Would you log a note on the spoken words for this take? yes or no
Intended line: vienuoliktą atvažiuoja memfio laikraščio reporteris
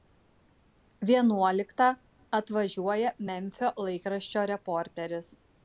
no